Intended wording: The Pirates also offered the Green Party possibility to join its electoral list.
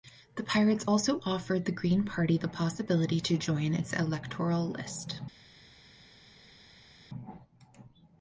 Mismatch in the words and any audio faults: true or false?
true